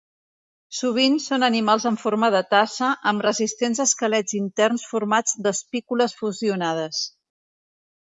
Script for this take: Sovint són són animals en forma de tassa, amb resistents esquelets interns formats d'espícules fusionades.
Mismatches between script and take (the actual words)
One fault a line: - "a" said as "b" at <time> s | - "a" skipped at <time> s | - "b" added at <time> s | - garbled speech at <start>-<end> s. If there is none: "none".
- "són" skipped at 1.4 s